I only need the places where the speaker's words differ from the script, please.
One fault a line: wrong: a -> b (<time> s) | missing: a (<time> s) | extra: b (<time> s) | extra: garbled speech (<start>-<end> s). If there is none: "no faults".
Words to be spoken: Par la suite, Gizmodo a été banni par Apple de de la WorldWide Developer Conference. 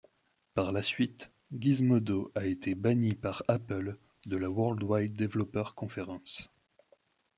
missing: de (4.4 s)